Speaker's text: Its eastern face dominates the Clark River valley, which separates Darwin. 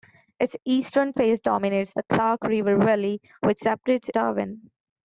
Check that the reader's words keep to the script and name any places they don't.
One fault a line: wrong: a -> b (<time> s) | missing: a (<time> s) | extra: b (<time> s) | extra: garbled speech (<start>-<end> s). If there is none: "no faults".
no faults